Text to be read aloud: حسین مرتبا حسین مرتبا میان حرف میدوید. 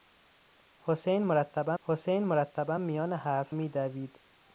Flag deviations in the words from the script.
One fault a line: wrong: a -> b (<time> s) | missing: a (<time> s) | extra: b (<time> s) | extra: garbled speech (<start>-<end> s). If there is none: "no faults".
no faults